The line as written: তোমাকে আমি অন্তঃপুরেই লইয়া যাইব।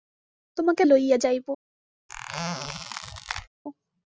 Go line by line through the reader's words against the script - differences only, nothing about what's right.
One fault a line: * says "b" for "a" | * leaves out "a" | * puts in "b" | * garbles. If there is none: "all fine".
* leaves out "আমি অন্তঃপুরেই"